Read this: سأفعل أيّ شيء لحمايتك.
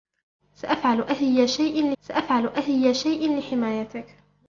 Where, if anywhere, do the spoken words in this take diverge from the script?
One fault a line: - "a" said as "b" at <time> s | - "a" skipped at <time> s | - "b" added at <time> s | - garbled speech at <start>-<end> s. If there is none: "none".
- "سأفعل أيّ شيء" added at 2.0 s